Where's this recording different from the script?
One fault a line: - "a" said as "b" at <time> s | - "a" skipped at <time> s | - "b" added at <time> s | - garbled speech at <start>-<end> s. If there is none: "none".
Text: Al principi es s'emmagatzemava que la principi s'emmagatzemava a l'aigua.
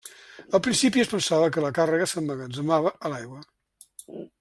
- "s'emmagatzemava" said as "pensava" at 1.1 s
- "principi" said as "càrrega" at 1.8 s